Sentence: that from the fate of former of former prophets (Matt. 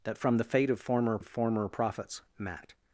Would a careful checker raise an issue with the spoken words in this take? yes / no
no